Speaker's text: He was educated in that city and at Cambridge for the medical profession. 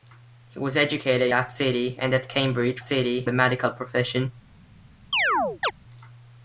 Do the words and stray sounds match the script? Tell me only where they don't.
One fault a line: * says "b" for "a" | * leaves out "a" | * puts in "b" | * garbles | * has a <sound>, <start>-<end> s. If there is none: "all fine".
* leaves out "in"
* says "city" for "for"
* has a chirp, 5.1-5.7 s